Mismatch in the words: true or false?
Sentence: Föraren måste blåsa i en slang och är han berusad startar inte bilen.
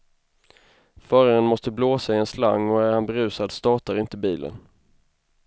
false